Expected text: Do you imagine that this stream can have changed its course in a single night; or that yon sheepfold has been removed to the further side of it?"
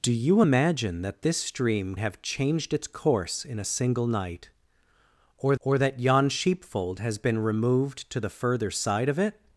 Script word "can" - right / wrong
wrong